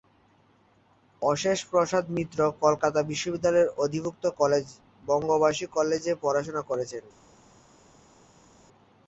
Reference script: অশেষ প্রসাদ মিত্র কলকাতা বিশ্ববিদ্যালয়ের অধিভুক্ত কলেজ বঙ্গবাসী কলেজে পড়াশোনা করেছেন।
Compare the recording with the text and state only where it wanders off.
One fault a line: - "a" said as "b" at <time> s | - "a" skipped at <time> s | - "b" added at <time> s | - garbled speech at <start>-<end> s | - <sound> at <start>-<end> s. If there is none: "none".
none